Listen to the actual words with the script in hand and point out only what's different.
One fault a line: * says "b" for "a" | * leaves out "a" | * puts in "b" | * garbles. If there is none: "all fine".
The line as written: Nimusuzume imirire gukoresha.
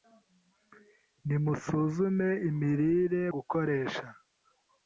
all fine